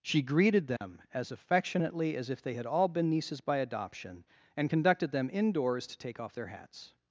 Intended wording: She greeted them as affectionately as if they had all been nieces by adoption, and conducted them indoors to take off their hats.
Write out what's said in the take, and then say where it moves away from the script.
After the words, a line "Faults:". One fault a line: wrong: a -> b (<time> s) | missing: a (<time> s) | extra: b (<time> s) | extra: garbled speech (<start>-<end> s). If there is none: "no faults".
She greeted them as affectionately as if they had all been nieces by adoption, and conducted them indoors to take off their hats.
Faults:
no faults